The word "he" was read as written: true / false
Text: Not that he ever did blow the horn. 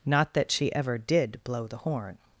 false